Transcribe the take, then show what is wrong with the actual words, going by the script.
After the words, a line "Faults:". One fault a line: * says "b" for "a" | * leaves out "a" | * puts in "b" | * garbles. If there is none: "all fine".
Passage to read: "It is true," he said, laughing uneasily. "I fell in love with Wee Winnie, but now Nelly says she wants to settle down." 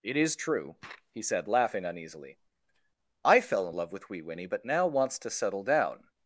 "It is true," he said, laughing uneasily. "I fell in love with Wee Winnie, but now wants to settle down."
Faults:
* leaves out "Nelly says she"